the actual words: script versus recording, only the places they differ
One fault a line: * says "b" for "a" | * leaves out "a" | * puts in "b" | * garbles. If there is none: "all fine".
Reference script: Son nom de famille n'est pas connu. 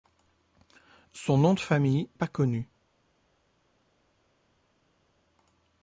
* leaves out "n'est"